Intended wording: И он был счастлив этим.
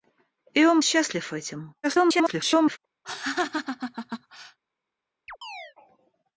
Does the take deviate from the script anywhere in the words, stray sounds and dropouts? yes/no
yes